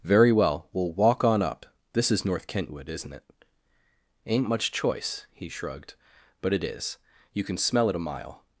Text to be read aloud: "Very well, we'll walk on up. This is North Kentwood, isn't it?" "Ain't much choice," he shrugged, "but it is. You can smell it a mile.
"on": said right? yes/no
yes